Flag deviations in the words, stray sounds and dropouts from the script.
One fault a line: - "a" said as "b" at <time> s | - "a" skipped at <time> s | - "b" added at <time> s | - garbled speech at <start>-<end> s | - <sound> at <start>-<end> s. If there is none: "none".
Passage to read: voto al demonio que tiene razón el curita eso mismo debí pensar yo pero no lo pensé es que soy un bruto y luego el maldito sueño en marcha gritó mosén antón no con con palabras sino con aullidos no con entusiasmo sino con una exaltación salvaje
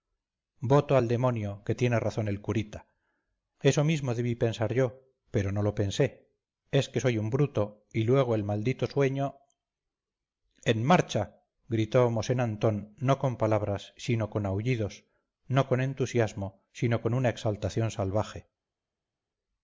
- "con" skipped at 13.4 s